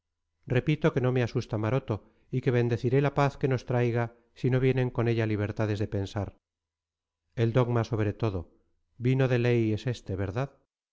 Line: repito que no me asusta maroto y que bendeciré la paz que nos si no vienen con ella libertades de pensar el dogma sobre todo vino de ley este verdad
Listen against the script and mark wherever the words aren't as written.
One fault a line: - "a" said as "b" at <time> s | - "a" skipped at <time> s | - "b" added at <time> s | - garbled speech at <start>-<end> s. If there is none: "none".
- "traiga" added at 3.7 s
- "es" added at 9.7 s